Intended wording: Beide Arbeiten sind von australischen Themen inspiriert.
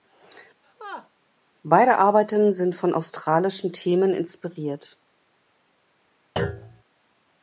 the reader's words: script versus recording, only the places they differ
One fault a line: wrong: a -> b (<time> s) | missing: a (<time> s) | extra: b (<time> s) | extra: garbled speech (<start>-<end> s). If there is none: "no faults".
no faults